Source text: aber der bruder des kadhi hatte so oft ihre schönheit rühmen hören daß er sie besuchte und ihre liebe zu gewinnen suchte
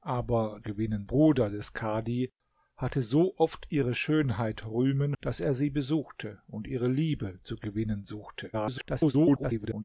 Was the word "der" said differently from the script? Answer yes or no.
yes